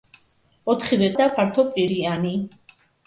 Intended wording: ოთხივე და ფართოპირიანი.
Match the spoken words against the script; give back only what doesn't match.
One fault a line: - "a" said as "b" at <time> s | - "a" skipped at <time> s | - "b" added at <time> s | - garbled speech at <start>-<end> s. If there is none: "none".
none